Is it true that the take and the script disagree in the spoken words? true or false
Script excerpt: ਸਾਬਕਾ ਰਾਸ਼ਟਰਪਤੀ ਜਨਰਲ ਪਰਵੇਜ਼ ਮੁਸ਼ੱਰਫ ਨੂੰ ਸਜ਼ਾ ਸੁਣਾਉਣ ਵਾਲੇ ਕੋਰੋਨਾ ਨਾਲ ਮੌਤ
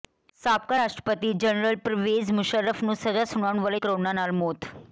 false